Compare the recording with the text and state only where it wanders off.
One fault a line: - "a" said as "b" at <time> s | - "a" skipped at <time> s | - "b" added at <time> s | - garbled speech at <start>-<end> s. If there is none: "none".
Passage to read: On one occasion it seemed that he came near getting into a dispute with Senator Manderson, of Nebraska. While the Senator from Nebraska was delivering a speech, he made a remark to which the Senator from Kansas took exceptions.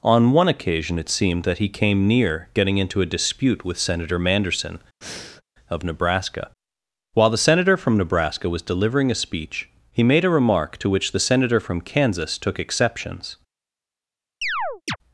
none